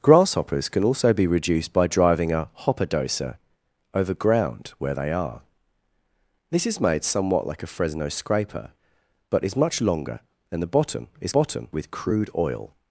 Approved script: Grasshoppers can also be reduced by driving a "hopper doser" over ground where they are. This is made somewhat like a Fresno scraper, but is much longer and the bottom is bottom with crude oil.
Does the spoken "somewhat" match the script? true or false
true